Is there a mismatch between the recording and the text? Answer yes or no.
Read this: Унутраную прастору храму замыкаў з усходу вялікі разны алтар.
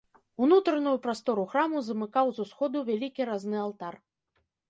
no